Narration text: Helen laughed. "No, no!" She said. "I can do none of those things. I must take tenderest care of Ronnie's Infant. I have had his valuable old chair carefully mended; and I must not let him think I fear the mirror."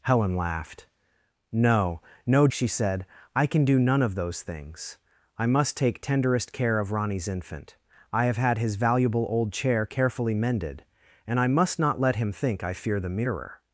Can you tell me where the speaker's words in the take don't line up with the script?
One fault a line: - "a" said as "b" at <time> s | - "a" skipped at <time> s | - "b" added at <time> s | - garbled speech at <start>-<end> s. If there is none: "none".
none